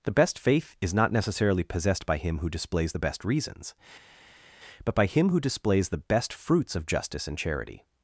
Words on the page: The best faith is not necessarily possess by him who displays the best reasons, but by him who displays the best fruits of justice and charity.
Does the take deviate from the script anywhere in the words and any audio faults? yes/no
yes